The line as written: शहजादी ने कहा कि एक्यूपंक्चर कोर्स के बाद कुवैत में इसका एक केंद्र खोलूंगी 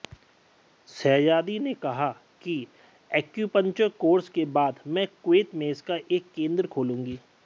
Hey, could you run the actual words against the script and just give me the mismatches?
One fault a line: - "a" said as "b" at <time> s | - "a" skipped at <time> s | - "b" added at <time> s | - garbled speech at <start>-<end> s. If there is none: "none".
- "मैं" added at 4.9 s